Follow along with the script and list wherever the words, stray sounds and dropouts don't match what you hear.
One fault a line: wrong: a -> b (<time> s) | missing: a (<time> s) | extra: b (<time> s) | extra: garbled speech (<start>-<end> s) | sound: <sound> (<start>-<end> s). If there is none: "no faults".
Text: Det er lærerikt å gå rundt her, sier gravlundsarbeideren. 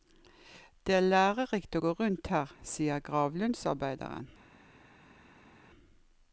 no faults